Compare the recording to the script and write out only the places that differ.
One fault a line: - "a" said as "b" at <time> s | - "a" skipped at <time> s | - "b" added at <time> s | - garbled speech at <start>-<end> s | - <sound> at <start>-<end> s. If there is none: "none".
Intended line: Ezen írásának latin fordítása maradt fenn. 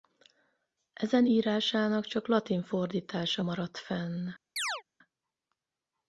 - "csak" added at 2.0 s
- chirp at 4.6-4.8 s